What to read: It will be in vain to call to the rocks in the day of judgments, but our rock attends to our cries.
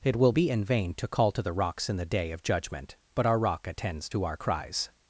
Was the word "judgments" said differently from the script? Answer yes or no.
yes